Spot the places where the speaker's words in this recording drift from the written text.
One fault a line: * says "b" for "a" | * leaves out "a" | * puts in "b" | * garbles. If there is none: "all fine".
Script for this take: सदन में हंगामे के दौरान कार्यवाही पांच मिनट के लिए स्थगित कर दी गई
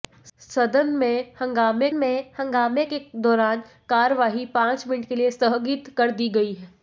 * puts in "में हंगामे"